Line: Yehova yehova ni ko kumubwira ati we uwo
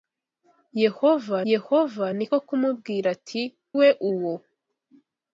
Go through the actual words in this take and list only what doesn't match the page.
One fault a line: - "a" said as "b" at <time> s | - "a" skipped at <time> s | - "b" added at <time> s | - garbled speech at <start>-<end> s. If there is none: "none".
none